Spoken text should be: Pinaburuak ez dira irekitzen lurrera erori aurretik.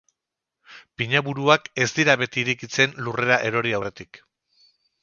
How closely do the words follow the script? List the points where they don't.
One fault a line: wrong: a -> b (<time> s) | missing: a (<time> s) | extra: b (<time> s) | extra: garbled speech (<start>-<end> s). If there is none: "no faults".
extra: beti (2.2 s)